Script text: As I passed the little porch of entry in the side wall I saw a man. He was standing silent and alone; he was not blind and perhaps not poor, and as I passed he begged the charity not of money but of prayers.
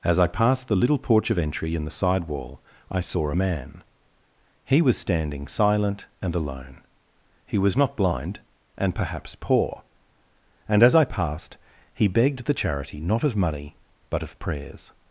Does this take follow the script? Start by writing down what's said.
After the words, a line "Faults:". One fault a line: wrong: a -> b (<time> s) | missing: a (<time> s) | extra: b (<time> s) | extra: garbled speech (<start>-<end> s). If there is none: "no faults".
As I passed the little porch of entry in the side wall I saw a man. He was standing silent and alone; he was not blind and perhaps poor, and as I passed he begged the charity not of money but of prayers.
Faults:
missing: not (9.3 s)